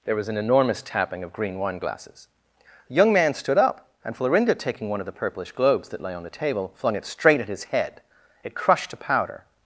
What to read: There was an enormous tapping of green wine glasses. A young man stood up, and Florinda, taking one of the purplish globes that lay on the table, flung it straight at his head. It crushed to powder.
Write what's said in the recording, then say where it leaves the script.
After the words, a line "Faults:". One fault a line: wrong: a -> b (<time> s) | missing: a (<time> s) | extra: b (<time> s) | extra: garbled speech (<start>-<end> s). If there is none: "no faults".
There was an enormous tapping of green wine glasses. A young man stood up, and Florinda, taking one of the purplish globes that lay on the table, flung it straight at his head. It crushed to powder.
Faults:
no faults